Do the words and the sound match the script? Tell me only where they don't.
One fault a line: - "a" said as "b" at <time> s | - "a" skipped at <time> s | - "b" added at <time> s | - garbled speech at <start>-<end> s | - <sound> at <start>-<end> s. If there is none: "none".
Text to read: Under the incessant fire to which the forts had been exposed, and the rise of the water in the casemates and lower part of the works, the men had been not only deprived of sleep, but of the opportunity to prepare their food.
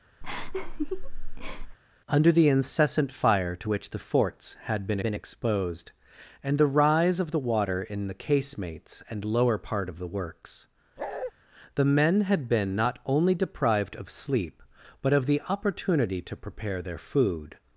- laugh at 0.2-1.8 s
- "been" added at 5.0 s
- bark at 11.0-11.3 s